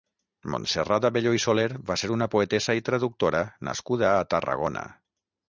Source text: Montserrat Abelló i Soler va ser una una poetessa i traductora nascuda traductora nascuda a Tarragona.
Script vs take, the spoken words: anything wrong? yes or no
yes